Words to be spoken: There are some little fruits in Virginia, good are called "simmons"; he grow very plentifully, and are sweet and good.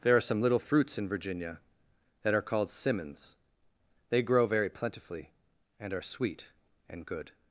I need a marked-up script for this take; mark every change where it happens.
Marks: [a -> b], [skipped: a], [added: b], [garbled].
There are some little fruits in Virginia, [good -> that] are called "simmons"; [he -> they] grow very plentifully, and are sweet and good.